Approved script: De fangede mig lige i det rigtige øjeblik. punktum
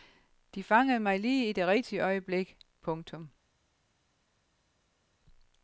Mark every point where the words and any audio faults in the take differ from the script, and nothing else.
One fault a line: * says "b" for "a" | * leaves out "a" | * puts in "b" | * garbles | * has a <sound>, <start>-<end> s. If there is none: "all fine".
all fine